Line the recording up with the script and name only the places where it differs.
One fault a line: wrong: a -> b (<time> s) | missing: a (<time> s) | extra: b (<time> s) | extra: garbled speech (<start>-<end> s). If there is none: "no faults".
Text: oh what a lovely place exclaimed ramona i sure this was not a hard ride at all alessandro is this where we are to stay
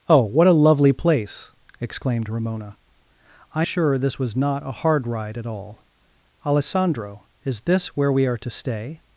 no faults